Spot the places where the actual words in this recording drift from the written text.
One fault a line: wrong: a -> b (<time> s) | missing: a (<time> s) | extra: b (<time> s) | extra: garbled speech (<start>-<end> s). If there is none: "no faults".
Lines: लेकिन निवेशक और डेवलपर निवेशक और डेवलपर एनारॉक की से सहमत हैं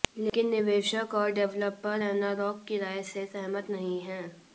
missing: निवेशक और डेवलपर (2.0 s)
extra: राय (2.8 s)
extra: नहीं (3.7 s)